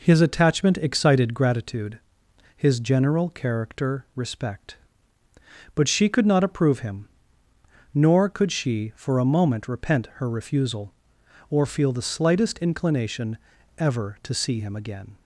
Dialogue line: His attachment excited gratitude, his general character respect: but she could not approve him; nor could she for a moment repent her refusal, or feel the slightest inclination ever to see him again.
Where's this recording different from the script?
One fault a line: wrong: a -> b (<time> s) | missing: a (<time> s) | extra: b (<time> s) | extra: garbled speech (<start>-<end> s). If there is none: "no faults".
no faults